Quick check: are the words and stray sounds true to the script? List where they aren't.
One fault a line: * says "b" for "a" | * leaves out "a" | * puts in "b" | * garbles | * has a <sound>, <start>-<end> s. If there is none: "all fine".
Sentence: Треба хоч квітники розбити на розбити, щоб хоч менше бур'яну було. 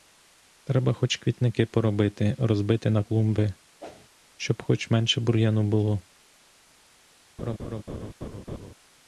* puts in "поробити"
* says "клумби" for "розбити"
* has a whoosh, 3.8-4.1 s
* has a laugh, 7.4-8.7 s